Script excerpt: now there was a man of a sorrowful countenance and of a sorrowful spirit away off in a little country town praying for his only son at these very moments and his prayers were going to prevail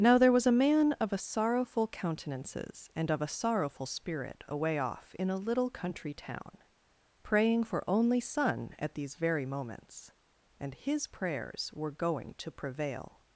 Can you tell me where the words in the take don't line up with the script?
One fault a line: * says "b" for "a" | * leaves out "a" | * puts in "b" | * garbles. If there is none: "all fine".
* says "countenances" for "countenance"
* leaves out "his"